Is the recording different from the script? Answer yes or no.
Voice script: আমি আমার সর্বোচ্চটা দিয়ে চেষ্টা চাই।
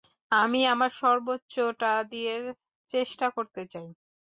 yes